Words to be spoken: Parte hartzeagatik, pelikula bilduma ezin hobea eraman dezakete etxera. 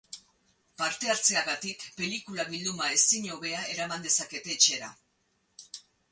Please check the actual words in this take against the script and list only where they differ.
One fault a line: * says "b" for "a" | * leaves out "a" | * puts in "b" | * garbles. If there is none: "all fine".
all fine